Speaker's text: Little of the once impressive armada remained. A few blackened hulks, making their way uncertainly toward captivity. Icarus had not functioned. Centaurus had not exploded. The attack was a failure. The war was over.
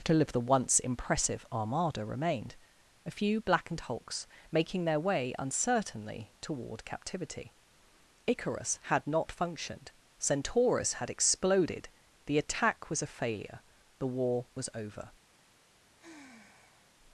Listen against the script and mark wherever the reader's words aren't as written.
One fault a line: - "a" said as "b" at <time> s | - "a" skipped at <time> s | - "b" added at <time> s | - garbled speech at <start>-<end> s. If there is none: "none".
- "not" skipped at 11.1 s